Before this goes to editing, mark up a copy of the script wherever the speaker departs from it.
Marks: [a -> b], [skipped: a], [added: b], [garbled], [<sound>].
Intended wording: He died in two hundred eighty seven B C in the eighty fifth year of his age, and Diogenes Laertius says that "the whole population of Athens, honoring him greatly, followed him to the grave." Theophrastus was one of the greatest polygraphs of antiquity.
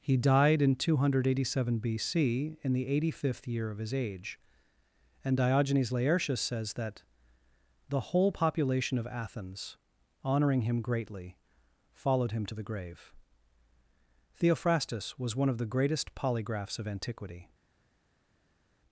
He died in two hundred eighty seven B C in the eighty fifth year of his age, and Diogenes Laertius says that "the whole population of Athens, honoring him greatly, followed him to the grave." Theophrastus was one of the greatest polygraphs of antiquity.